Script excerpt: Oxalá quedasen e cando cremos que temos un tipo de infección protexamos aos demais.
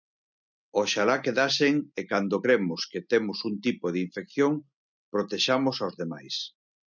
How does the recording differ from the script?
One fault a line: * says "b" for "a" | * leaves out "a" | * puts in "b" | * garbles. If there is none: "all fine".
all fine